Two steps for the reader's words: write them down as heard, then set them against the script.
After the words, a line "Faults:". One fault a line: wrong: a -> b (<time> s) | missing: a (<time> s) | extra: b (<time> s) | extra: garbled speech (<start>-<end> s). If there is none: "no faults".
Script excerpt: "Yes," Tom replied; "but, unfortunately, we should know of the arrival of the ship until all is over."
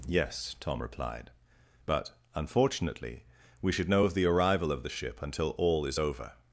"Yes," Tom replied; "but, unfortunately, we should know of the arrival of the ship until all is over."
Faults:
no faults